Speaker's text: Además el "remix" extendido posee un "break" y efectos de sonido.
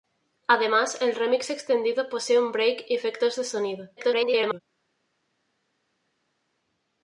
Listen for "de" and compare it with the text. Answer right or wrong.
right